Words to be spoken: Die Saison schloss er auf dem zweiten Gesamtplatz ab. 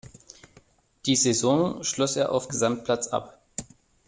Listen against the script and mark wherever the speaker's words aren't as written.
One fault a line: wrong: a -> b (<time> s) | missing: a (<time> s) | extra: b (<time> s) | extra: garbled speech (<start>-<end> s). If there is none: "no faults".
missing: dem zweiten (2.5 s)